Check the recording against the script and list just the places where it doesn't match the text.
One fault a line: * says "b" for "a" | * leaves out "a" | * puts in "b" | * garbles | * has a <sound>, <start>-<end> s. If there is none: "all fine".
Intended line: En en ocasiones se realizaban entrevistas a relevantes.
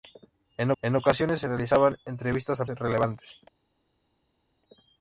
all fine